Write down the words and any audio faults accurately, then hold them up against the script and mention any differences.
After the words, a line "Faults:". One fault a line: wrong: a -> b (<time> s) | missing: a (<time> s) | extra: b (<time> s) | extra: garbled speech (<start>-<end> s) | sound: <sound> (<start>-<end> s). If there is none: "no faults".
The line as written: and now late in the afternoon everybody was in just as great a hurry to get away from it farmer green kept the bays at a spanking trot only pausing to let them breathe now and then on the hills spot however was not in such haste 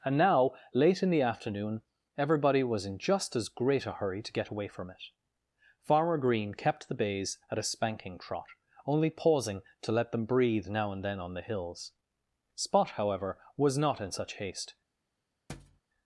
and now late in the afternoon everybody was in just as great a hurry to get away from it farmer green kept the bays at a spanking trot only pausing to let them breathe now and then on the hills spot however was not in such haste
Faults:
sound: thud (15.5-15.8 s)